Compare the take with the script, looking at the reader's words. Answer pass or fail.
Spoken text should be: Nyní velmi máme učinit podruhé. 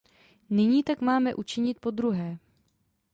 fail